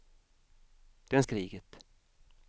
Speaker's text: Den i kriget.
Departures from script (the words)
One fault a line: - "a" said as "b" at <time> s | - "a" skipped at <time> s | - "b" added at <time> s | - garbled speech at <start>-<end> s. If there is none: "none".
none